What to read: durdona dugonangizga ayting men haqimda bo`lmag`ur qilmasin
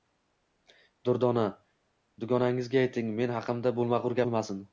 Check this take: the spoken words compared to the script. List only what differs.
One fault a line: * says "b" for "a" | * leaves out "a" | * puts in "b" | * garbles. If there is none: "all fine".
all fine